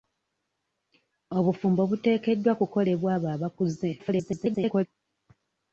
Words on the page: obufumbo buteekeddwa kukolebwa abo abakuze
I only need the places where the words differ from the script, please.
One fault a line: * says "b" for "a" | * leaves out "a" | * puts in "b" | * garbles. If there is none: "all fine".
* garbles